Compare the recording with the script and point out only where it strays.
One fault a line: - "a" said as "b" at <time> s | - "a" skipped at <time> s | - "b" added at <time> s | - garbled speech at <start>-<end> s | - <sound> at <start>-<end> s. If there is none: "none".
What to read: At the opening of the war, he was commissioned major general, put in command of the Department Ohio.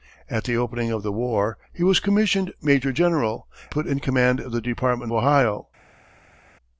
none